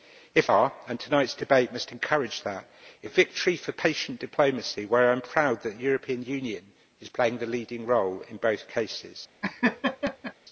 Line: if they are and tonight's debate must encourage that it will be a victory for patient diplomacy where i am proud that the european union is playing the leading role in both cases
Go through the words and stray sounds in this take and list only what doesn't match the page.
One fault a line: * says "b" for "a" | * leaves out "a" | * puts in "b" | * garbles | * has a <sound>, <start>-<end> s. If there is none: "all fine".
* leaves out "they"
* leaves out "will be"
* has a laugh, 9.4-10.3 s